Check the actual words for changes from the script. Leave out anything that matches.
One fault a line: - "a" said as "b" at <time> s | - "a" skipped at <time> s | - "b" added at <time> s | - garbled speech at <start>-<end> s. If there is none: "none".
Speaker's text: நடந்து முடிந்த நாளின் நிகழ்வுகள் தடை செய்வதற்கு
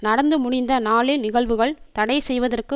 none